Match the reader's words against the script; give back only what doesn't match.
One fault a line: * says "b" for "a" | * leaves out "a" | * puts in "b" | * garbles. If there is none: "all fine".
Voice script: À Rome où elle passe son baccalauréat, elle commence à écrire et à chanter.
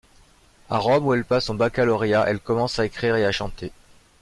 all fine